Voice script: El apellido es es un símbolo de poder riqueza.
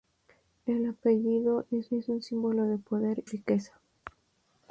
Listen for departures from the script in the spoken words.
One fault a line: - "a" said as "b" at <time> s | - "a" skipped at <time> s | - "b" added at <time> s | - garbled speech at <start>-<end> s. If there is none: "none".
none